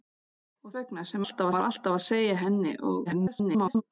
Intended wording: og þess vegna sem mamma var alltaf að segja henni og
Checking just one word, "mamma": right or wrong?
wrong